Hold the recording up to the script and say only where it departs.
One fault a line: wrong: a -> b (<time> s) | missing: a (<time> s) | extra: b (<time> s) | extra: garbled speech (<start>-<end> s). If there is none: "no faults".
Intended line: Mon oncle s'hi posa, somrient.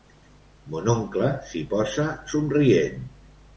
no faults